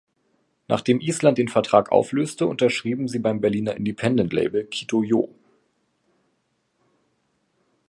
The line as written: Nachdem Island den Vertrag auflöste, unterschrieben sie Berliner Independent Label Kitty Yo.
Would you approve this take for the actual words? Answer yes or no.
no